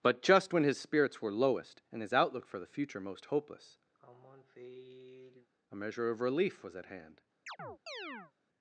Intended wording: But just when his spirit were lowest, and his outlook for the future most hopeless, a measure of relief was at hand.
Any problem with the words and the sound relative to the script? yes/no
yes